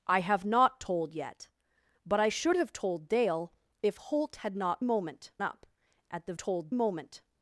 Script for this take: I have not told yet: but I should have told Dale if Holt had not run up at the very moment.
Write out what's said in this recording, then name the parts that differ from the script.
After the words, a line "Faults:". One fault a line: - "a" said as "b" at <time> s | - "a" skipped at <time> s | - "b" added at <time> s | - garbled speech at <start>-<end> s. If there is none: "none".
I have not told yet: but I should have told Dale if Holt had not moment up at the told moment.
Faults:
- "run" said as "moment" at 4.8 s
- "very" said as "told" at 6.4 s